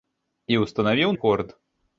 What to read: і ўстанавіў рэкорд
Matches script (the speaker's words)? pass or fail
pass